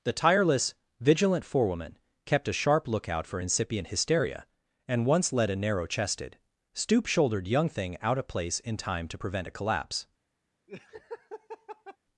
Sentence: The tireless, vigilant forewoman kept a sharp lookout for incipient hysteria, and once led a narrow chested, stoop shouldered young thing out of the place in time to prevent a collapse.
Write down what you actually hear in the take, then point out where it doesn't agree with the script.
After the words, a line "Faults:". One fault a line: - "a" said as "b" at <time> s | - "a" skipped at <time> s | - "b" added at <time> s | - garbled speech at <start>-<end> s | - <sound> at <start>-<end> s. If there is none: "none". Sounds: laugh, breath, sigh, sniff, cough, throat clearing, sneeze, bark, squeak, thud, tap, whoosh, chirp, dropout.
The tireless, vigilant forewoman kept a sharp lookout for incipient hysteria, and once led a narrow chested, stoop shouldered young thing out of place in time to prevent a collapse.
Faults:
- "the" skipped at 8.3 s
- laugh at 10.7-12.0 s